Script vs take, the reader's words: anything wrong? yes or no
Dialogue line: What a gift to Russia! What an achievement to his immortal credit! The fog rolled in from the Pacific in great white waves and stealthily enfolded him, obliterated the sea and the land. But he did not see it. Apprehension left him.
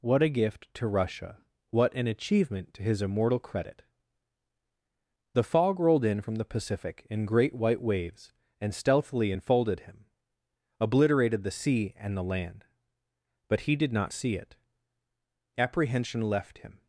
no